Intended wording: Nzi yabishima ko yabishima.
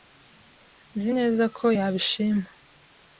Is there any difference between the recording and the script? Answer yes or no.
yes